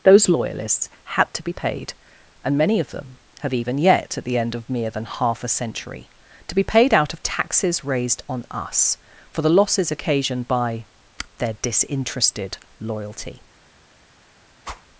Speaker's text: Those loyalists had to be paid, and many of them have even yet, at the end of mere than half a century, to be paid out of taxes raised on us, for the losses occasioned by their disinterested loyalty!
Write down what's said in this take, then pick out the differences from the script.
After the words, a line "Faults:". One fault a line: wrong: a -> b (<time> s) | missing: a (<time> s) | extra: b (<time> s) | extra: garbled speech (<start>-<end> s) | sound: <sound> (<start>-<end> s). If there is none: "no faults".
Those loyalists had to be paid, and many of them have even yet, at the end of mere than half a century, to be paid out of taxes raised on us, for the losses occasioned by their disinterested loyalty!
Faults:
sound: whoosh (14.6-14.9 s)